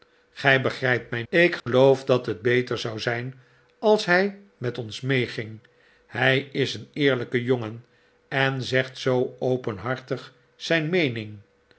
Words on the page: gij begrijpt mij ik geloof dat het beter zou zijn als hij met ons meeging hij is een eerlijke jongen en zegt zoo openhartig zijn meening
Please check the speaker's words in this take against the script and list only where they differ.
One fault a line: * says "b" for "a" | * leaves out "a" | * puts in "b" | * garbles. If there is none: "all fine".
all fine